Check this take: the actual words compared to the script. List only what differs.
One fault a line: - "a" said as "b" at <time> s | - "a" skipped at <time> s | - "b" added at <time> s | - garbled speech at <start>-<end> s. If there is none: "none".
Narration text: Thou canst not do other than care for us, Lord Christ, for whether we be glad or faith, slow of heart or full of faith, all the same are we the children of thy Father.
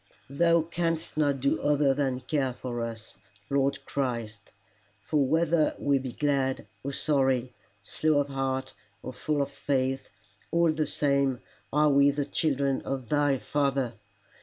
- "faith" said as "sorry" at 6.9 s